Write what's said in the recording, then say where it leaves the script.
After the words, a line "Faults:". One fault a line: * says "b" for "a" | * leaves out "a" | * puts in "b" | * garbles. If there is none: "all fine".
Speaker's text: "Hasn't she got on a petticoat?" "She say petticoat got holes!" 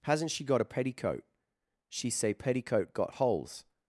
"Hasn't she got a petticoat?" "She say petticoat got holes!"
Faults:
* leaves out "on"